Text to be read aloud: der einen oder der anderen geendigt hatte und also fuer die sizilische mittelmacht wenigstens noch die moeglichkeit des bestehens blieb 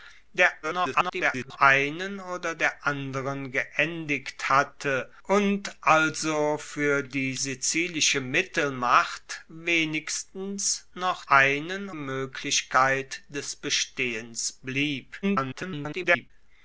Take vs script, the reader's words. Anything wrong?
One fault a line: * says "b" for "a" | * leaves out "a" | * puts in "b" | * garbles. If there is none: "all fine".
* garbles
* says "einen" for "die"
* garbles